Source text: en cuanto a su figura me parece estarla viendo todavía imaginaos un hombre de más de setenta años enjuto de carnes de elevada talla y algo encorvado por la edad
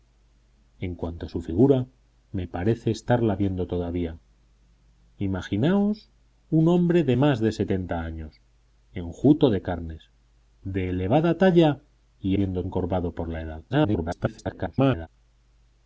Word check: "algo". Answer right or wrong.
wrong